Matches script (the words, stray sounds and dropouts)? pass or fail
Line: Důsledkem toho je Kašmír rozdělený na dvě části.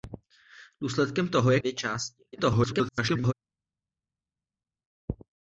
fail